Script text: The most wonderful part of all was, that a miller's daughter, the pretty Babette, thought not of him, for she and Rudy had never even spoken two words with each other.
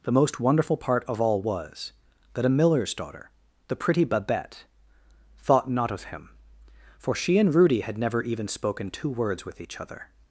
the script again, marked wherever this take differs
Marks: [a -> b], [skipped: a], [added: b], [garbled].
The most wonderful part of all was, that a miller's daughter, the pretty Babette, thought not of him, for she and Rudy had never even spoken two words with each other.